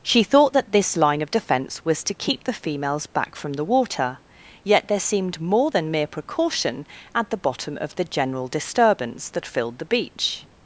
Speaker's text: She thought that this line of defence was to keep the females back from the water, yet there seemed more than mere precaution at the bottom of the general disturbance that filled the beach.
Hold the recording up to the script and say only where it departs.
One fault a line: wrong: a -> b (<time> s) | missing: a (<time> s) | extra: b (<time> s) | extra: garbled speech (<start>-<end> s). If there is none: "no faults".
no faults